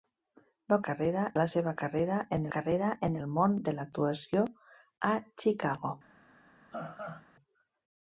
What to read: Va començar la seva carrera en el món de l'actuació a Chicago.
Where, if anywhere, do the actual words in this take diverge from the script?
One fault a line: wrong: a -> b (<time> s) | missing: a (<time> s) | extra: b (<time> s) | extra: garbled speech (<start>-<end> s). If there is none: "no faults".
wrong: començar -> carrera (0.9 s)
extra: carrera en (2.6 s)